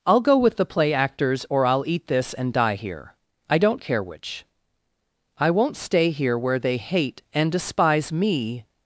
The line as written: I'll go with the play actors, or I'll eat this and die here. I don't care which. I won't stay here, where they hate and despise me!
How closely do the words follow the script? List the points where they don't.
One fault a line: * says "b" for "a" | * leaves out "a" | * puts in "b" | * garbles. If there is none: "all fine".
all fine